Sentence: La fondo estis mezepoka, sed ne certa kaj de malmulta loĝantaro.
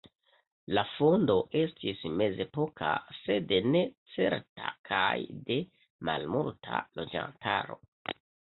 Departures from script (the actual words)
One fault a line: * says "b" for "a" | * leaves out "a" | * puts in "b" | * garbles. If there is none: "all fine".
all fine